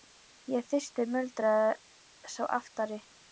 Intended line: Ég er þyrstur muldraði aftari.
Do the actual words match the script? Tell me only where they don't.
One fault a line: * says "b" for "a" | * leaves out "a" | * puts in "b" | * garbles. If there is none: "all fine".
* puts in "sá"